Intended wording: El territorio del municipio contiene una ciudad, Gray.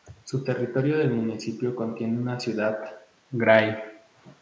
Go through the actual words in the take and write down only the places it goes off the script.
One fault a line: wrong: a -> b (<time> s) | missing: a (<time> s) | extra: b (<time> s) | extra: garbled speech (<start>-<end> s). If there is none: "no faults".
no faults